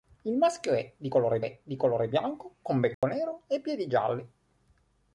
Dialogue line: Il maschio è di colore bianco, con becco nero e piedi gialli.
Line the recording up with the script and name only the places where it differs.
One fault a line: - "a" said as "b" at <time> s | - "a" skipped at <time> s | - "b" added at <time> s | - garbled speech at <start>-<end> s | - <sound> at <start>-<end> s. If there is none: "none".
- "è di colore" added at 1.4 s
- dropout at 2.9-3.0 s